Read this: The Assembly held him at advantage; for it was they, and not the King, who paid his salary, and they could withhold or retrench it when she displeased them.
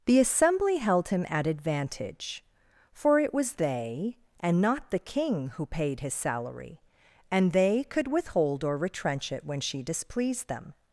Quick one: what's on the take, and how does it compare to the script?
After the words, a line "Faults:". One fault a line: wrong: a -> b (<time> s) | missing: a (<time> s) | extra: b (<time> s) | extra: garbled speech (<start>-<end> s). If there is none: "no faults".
The Assembly held him at advantage; for it was they, and not the King, who paid his salary, and they could withhold or retrench it when she displeased them.
Faults:
no faults